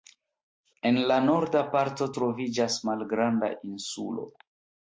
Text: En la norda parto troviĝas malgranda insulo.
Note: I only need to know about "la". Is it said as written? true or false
true